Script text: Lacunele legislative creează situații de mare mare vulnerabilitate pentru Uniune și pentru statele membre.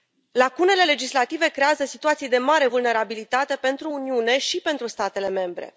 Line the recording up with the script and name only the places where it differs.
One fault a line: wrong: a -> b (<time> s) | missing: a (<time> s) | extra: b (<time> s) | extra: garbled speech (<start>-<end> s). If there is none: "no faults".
missing: mare (2.7 s)